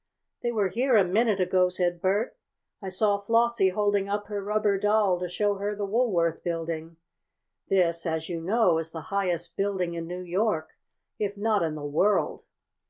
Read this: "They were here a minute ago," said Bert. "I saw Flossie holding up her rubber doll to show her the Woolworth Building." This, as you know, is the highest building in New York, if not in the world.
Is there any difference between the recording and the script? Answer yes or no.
no